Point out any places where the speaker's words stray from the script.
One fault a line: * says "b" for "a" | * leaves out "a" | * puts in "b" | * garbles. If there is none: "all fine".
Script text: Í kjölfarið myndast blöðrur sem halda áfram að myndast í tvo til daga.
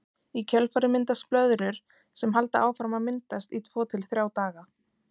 * puts in "þrjá"